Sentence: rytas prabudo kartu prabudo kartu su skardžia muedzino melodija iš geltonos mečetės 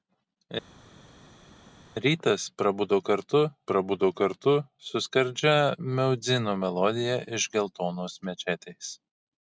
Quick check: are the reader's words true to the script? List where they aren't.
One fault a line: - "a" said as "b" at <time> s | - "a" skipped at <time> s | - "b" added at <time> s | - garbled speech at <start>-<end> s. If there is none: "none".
none